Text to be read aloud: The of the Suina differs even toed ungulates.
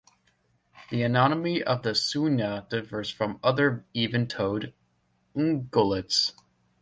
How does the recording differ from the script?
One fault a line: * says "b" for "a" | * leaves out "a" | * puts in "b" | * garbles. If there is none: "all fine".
* puts in "anatomy"
* puts in "from other"